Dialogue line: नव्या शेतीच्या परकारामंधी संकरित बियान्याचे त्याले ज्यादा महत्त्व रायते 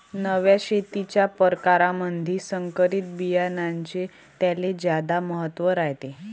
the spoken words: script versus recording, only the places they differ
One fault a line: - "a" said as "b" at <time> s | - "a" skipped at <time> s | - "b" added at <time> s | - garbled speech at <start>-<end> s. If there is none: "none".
none